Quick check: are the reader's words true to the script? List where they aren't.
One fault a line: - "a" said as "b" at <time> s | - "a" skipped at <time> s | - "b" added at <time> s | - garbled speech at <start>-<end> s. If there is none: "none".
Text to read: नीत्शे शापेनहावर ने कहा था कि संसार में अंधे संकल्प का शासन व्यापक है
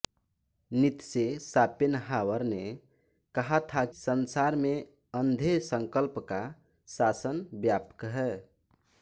- "कि" skipped at 3.8 s